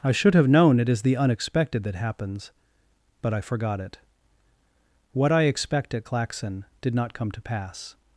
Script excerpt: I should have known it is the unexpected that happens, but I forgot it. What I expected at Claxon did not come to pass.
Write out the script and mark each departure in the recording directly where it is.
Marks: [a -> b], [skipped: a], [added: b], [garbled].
I should have known it is the unexpected that happens, but I forgot it. What I [expected -> expect] at Claxon did not come to pass.